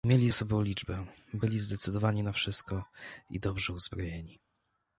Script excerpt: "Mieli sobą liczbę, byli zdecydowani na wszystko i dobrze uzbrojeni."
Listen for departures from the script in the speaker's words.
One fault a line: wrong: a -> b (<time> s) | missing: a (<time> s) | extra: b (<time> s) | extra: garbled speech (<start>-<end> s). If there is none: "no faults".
no faults